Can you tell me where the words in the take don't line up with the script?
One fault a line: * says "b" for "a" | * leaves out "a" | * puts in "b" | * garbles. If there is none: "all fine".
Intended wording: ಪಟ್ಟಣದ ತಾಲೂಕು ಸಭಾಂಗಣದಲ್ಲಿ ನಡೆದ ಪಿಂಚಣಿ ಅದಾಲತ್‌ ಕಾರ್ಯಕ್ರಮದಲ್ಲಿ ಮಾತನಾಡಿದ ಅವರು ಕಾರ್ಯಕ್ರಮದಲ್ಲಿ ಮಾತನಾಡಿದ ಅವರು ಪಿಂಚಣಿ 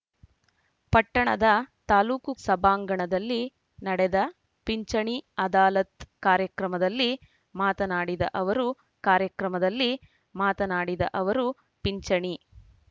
all fine